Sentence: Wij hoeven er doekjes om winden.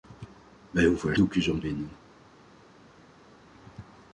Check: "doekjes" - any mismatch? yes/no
no